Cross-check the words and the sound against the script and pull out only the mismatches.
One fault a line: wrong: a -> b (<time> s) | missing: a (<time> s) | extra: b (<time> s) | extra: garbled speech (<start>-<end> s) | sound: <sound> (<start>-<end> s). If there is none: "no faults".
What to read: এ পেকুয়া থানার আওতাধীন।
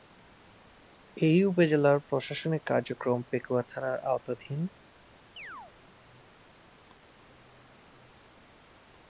extra: উপজেলার প্রশাসনিক কার্যক্রম (1.4 s)
sound: chirp (5.4-5.7 s)